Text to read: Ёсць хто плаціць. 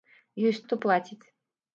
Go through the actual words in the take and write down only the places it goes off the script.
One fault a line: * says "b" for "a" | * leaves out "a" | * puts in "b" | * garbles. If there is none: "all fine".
all fine